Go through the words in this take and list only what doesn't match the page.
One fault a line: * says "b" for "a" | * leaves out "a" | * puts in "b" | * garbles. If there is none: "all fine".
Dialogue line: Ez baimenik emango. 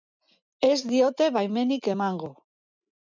* puts in "diote"